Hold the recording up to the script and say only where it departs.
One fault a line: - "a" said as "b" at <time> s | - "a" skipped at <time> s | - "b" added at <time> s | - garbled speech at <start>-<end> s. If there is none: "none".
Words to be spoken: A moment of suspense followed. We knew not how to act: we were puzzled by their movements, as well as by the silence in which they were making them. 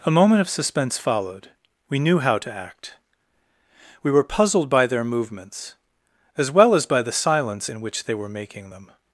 - "not" skipped at 2.2 s